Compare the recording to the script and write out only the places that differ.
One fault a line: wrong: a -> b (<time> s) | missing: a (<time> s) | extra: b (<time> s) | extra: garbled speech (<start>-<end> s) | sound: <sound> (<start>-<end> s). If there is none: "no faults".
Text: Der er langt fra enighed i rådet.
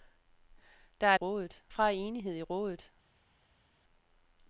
wrong: langt -> rådet (1.1 s)